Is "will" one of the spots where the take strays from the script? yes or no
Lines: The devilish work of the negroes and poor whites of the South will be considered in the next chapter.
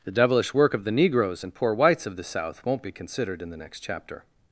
yes